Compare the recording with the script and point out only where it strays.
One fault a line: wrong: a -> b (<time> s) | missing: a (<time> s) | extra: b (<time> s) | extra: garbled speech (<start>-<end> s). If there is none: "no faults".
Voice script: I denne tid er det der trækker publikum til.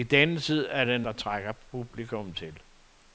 no faults